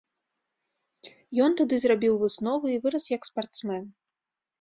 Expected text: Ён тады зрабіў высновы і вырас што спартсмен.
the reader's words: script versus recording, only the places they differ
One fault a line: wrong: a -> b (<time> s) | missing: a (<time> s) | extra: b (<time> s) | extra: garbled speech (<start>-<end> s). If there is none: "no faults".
wrong: што -> як (3.1 s)